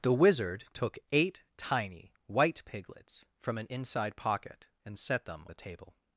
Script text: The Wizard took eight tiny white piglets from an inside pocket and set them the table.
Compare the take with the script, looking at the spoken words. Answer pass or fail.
pass